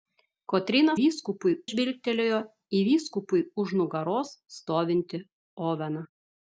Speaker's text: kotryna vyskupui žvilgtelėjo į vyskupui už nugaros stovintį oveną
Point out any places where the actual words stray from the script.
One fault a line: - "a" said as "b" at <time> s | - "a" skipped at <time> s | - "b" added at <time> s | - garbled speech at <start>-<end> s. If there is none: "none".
none